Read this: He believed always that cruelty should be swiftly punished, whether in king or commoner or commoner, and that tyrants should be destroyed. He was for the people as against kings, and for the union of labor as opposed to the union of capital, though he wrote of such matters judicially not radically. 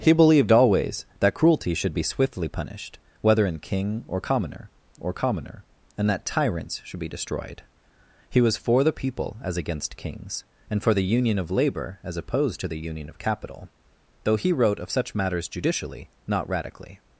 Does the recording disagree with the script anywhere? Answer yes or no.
no